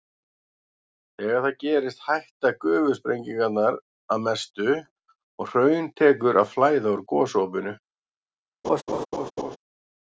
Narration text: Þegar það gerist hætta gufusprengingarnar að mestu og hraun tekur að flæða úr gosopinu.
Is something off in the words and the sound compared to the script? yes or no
yes